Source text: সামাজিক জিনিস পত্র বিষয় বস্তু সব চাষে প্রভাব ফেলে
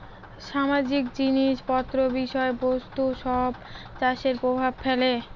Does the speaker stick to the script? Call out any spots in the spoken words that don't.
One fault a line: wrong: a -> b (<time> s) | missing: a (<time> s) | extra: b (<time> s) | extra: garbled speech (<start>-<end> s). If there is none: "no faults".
no faults